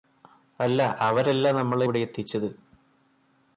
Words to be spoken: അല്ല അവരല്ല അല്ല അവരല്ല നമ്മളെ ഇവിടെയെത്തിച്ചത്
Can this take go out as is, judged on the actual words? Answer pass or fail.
fail